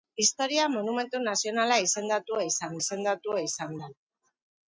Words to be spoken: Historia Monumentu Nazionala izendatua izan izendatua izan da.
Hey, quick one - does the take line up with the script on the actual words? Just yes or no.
yes